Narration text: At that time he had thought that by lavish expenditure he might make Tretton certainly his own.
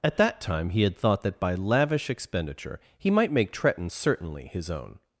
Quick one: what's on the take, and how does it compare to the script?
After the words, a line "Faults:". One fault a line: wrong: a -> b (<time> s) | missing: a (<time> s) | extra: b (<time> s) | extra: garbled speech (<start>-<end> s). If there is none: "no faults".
At that time he had thought that by lavish expenditure he might make Tretton certainly his own.
Faults:
no faults